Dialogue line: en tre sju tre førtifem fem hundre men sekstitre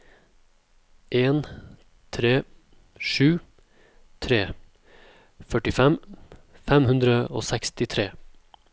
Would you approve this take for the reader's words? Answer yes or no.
no